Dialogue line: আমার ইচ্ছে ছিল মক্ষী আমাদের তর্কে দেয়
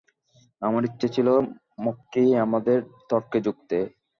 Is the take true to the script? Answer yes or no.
no